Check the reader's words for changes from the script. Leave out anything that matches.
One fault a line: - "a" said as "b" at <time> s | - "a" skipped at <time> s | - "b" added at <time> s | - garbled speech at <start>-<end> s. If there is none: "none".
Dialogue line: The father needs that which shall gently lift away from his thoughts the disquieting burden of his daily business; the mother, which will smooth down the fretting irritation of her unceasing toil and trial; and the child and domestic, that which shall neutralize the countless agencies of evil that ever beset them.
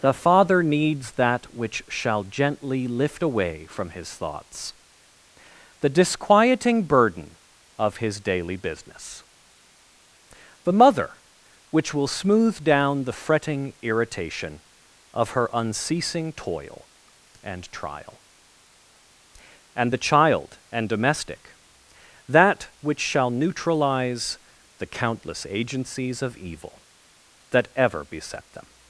none